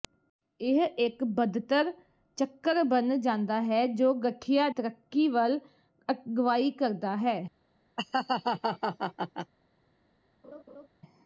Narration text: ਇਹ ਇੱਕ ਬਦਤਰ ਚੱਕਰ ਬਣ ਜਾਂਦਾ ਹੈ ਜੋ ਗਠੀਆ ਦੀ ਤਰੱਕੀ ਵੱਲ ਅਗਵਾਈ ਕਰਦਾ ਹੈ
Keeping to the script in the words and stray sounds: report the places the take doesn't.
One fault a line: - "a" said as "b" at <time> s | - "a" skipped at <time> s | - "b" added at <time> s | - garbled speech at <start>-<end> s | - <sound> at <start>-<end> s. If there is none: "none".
- "ਦੀ" skipped at 4.7 s
- laugh at 8.0-9.5 s
- laugh at 10.4-10.9 s